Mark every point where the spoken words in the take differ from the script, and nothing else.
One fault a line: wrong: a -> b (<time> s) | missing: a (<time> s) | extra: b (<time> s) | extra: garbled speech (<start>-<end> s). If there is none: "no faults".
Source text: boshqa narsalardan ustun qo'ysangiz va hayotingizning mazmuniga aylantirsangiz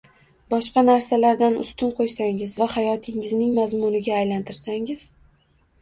no faults